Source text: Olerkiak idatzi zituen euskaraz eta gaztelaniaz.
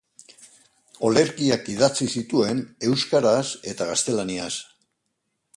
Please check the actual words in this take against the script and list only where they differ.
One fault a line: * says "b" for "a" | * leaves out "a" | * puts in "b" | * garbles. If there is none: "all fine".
all fine